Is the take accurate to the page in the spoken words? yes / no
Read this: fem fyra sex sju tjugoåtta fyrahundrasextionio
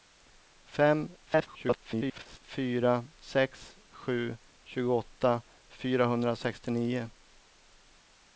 no